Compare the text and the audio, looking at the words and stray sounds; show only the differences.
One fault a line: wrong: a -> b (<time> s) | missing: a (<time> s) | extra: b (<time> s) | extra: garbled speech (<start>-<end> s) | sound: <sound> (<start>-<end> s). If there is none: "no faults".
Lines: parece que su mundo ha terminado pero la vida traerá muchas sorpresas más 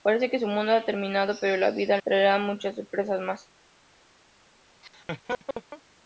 sound: laugh (4.8-5.8 s)